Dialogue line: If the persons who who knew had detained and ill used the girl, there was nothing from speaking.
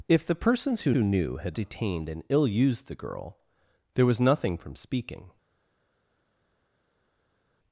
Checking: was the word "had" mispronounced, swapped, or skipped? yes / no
no